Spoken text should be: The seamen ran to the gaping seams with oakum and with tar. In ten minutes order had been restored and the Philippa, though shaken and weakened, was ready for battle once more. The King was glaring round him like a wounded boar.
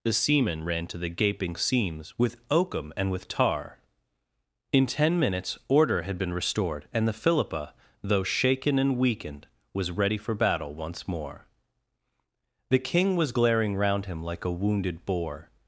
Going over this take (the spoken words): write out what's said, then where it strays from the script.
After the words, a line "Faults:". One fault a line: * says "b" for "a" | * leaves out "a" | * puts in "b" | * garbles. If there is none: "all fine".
The seamen ran to the gaping seams with oakum and with tar. In ten minutes order had been restored and the Philippa, though shaken and weakened, was ready for battle once more. The King was glaring round him like a wounded boar.
Faults:
all fine